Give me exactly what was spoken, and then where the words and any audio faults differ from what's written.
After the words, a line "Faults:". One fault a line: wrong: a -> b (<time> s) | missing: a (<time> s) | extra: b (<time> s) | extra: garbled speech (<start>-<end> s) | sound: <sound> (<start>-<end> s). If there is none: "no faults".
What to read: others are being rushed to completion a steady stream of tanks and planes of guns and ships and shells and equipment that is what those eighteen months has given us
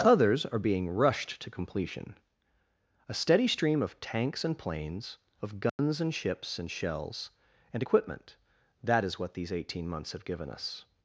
others are being rushed to completion a steady stream of tanks and planes of guns and ships and shells and equipment that is what these eighteen months have given us
Faults:
sound: dropout (5.7-5.8 s)
wrong: those -> these (9.3 s)
wrong: has -> have (10.1 s)